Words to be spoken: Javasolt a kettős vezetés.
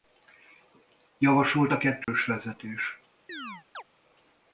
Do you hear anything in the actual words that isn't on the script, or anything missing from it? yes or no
no